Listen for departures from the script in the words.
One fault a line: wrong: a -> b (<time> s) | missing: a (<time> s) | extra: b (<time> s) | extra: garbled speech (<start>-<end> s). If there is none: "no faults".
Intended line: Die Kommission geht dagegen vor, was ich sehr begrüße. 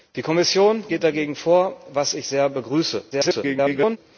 extra: garbled speech (3.1-4.0 s)